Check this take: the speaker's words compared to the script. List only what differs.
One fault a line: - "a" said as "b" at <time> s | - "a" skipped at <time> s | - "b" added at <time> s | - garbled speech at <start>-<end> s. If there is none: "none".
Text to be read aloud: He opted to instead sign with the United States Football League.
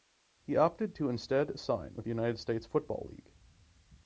none